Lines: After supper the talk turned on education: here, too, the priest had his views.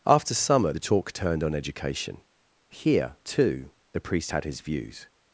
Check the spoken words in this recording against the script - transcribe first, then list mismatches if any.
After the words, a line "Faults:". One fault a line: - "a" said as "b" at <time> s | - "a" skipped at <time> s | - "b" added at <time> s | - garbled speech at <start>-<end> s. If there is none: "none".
After summer the talk turned on education: here, too, the priest had his views.
Faults:
- "supper" said as "summer" at 0.3 s